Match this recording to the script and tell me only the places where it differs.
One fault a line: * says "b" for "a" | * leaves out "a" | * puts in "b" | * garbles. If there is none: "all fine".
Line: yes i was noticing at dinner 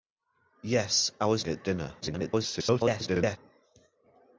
* leaves out "noticing"
* garbles